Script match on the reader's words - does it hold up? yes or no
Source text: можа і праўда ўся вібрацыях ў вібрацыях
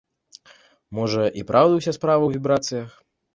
no